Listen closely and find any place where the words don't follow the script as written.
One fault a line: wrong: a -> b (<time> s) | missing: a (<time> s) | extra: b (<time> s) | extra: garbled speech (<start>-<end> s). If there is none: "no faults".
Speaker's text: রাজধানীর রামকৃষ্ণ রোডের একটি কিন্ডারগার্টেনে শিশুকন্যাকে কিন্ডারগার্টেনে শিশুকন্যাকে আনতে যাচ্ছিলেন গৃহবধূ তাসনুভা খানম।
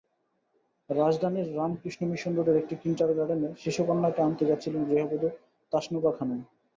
extra: মিশন (2.1 s)
missing: কিন্ডারগার্টেনে শিশুকন্যাকে (4.2 s)